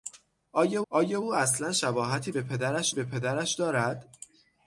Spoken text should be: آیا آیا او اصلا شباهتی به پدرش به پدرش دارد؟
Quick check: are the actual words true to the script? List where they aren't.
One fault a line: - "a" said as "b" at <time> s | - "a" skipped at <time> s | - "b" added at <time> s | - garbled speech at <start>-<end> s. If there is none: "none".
none